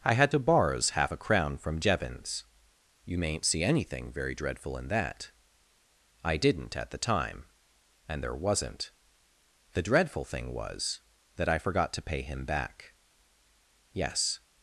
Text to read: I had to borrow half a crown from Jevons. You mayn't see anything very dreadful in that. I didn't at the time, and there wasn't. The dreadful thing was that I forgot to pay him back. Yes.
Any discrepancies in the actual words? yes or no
yes